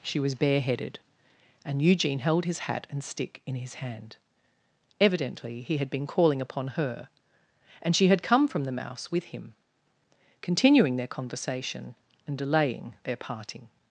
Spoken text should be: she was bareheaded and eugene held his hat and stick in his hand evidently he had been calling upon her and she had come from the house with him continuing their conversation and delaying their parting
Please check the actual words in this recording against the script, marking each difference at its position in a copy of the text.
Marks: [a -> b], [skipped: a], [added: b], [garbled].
she was bareheaded and eugene held his hat and stick in his hand evidently he had been calling upon her and she had come from the [house -> mouse] with him continuing their conversation and delaying their parting